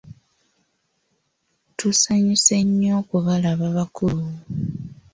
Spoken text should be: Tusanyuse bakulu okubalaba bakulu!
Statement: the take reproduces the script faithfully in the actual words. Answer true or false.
false